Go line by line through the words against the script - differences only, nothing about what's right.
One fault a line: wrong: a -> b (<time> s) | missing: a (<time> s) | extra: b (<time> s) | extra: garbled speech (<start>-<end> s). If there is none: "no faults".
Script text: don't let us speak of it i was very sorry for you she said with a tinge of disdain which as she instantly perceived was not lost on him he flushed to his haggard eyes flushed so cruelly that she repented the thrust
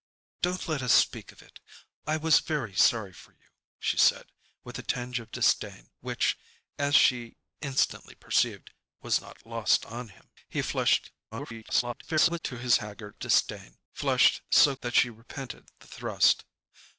extra: garbled speech (11.3-12.4 s)
wrong: eyes -> disdain (13.2 s)
missing: cruelly (14.7 s)